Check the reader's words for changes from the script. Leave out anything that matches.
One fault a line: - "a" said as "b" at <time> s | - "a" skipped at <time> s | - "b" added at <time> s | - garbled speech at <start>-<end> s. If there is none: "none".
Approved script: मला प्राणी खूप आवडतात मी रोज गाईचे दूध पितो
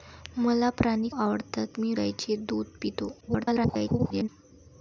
- "खूप" skipped at 1.1 s
- "रोज" skipped at 1.9 s
- garbled speech at 3.2-4.3 s